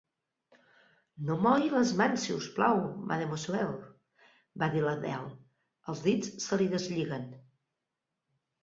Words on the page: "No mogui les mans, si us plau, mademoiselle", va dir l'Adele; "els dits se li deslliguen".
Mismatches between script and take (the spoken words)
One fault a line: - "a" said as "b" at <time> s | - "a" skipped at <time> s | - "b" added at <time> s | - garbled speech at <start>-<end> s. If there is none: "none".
none